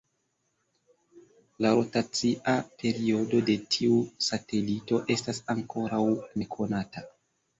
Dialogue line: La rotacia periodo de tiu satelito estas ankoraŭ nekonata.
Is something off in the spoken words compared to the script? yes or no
no